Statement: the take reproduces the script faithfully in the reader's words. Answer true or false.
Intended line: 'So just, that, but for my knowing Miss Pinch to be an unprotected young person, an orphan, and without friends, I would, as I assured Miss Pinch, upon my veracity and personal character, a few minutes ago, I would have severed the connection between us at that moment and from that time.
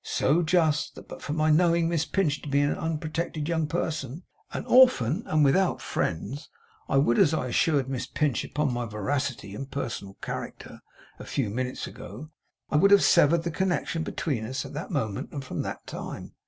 true